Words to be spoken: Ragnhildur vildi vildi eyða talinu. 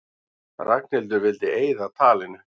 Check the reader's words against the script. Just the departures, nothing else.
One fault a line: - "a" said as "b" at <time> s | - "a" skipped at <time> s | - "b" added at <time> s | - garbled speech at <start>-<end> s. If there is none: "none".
- "vildi" skipped at 1.5 s